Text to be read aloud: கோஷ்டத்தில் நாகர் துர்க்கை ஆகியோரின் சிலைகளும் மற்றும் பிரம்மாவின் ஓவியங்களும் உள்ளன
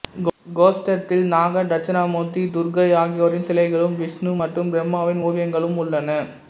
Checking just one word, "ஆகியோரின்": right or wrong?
right